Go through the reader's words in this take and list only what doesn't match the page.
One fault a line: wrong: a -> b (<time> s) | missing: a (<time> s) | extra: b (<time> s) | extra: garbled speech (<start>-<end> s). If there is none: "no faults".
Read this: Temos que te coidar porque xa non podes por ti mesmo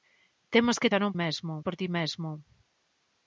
missing: te coidar porque (0.9 s)
wrong: podes -> mesmo (1.2 s)